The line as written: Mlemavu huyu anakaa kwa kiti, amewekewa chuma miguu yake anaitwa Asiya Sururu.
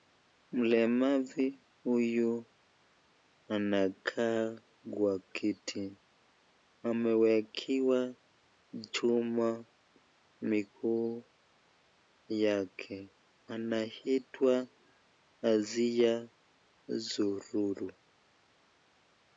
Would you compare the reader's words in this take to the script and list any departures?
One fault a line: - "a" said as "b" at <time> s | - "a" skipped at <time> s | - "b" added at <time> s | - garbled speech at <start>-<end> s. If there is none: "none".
none